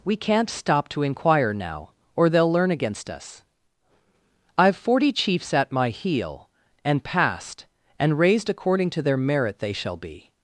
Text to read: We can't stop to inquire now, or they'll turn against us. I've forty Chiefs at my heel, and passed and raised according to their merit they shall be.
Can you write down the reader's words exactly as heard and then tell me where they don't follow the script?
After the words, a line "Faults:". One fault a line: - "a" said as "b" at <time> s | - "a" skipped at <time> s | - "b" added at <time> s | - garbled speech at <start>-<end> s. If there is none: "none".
We can't stop to inquire now, or they'll learn against us. I've forty Chiefs at my heel, and passed and raised according to their merit they shall be.
Faults:
- "turn" said as "learn" at 2.5 s